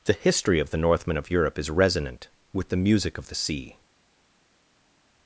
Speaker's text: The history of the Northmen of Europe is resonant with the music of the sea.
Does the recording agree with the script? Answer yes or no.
yes